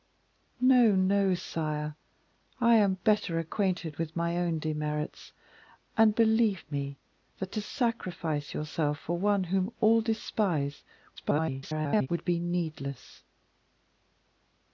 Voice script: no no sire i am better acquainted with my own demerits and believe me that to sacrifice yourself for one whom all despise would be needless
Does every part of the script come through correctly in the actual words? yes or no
no